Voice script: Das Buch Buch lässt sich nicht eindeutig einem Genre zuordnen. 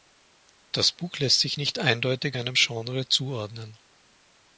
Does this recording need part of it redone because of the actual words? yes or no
yes